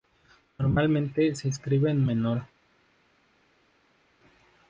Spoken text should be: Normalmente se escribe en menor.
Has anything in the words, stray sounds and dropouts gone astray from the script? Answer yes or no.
no